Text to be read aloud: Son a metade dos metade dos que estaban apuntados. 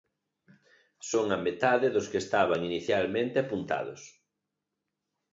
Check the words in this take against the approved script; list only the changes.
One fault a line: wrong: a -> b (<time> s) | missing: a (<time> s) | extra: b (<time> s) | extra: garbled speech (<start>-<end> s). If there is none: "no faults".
missing: metade dos (2.1 s)
extra: inicialmente (2.7 s)